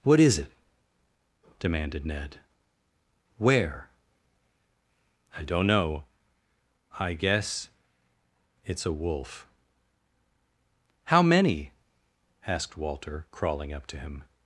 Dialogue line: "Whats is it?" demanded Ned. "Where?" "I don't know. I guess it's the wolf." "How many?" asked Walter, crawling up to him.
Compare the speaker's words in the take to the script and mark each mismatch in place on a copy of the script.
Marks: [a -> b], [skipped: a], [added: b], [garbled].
["Whats -> What] is it?" demanded Ned. "Where?" "I don't know. I guess it's [the -> a] wolf." "How many?" asked Walter, crawling up to him.